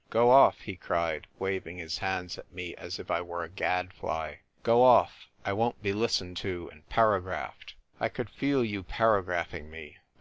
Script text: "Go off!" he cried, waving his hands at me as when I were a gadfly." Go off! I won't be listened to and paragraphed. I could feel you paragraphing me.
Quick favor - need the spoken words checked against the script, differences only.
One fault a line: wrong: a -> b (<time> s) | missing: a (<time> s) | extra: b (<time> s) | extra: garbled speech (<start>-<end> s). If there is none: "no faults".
wrong: when -> if (3.0 s)